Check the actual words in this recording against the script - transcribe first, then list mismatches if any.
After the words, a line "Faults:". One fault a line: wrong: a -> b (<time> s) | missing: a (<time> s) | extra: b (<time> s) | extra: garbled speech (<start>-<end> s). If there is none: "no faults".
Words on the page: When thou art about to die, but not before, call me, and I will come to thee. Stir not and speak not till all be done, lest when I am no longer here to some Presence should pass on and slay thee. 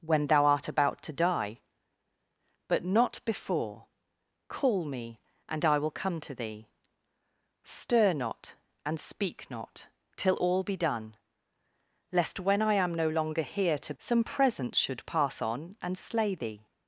When thou art about to die, but not before, call me, and I will come to thee. Stir not and speak not till all be done, lest when I am no longer here to some Presence should pass on and slay thee.
Faults:
no faults